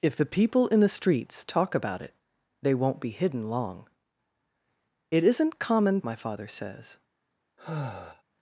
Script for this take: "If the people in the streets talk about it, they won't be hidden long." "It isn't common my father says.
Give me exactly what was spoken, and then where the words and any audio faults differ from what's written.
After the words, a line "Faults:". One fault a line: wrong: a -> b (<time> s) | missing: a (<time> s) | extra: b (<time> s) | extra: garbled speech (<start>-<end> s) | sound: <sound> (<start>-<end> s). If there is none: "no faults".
"If the people in the streets talk about it, they won't be hidden long." "It isn't common my father says.
Faults:
sound: sigh (7.6-8.2 s)